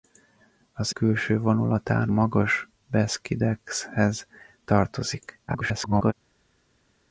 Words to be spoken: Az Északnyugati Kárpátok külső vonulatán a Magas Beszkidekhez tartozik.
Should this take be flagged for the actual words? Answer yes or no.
yes